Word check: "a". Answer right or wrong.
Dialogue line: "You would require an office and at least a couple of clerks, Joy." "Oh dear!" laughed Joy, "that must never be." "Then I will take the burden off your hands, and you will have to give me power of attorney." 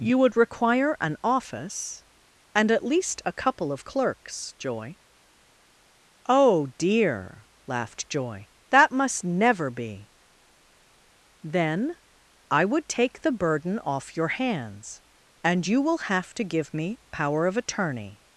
right